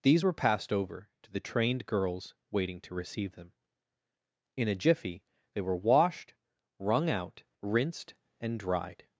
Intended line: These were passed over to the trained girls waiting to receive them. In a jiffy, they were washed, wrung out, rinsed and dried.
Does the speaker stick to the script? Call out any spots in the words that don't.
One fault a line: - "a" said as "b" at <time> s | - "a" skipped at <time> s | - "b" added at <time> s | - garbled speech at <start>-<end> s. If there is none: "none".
none